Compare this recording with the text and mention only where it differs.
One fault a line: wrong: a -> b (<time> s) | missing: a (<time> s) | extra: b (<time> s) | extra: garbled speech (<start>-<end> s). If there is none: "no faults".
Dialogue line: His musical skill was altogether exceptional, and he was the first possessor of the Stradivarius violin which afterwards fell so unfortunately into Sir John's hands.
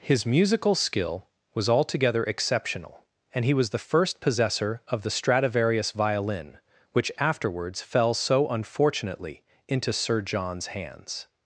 no faults